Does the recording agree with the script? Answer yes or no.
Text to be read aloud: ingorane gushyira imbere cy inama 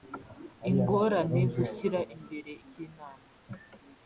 yes